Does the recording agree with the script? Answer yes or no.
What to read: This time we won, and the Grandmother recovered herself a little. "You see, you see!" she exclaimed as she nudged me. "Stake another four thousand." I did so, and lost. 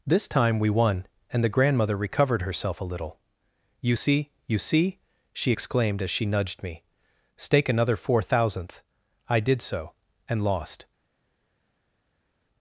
no